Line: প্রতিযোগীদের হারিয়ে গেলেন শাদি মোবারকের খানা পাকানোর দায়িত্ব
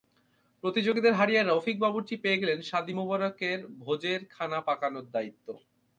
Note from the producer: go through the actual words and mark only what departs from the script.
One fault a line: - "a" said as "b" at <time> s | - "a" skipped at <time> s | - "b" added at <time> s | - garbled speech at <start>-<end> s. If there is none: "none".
- "রফিক বাবুর্চি পেয়ে" added at 1.4 s
- "ভোজের" added at 3.8 s